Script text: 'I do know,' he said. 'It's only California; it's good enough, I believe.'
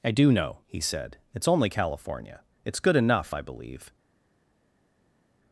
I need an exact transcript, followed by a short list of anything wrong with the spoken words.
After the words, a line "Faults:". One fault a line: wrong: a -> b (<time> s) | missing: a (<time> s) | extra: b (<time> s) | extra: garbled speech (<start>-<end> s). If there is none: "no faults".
'I do know,' he said. 'It's only California; it's good enough, I believe.'
Faults:
no faults